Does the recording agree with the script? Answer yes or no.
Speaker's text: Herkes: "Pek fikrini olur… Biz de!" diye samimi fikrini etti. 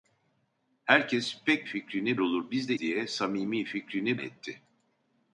yes